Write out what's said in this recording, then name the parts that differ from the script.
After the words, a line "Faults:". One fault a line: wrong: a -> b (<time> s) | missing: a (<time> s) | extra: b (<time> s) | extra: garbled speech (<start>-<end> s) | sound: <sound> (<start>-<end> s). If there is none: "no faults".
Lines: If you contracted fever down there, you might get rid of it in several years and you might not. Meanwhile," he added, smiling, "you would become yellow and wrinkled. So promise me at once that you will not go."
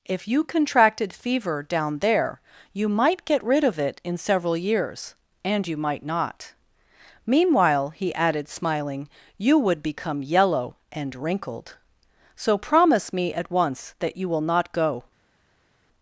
If you contracted fever down there, you might get rid of it in several years and you might not. Meanwhile," he added, smiling, "you would become yellow and wrinkled. So promise me at once that you will not go."
Faults:
no faults